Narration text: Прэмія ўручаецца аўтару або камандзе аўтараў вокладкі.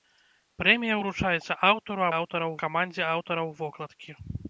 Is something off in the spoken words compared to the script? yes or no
yes